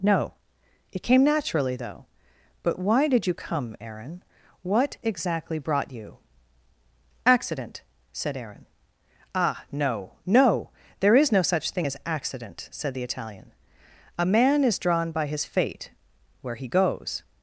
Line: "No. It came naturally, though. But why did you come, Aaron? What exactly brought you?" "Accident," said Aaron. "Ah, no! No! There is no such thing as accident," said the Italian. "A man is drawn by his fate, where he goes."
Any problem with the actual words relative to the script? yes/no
no